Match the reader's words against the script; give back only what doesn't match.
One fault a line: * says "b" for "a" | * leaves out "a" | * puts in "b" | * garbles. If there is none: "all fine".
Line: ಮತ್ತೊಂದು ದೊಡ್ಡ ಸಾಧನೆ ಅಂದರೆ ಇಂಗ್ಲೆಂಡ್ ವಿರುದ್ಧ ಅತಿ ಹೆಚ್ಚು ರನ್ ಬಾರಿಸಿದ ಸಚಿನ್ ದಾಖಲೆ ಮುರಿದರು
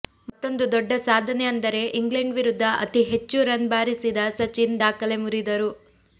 all fine